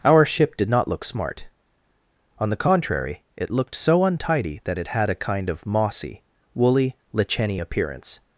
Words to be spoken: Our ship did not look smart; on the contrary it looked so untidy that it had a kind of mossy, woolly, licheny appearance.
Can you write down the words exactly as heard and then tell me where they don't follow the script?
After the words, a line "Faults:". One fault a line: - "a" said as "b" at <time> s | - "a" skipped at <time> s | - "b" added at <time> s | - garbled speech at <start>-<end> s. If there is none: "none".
Our ship did not look smart; on the contrary it looked so untidy that it had a kind of mossy, woolly, licheny appearance.
Faults:
none